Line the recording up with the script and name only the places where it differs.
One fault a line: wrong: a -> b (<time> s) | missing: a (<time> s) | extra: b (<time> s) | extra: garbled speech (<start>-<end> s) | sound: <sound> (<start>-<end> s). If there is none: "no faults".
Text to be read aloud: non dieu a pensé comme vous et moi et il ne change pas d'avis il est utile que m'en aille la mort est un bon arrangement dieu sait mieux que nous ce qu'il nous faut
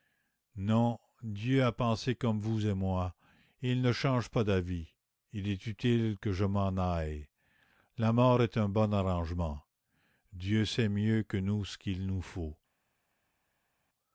extra: je (6.3 s)